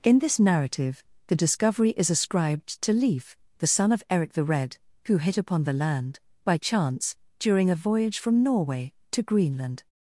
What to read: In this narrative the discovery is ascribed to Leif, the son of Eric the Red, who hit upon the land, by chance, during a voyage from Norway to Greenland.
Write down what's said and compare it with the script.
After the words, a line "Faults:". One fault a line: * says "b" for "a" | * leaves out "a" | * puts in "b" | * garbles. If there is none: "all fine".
In this narrative the discovery is ascribed to Leif, the son of Eric the Red, who hit upon the land, by chance, during a voyage from Norway to Greenland.
Faults:
all fine